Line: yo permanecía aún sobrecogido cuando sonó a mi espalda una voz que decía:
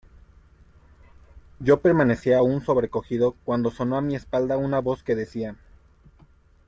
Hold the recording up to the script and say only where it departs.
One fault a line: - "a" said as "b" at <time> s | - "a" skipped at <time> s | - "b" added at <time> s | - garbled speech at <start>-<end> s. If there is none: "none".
none